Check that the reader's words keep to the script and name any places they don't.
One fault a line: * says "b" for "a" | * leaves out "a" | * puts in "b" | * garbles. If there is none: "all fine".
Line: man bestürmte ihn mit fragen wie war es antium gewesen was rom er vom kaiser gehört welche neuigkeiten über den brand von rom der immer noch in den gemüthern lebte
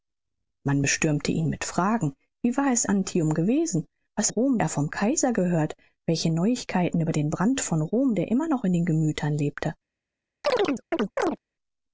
all fine